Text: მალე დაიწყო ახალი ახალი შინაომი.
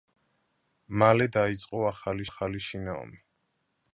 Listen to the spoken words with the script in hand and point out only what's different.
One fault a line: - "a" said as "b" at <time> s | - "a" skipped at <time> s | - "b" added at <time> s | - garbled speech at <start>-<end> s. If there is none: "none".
none